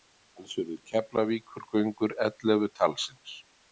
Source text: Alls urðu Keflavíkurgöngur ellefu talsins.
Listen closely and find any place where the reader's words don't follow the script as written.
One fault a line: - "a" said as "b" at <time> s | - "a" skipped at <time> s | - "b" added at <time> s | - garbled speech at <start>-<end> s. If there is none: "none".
none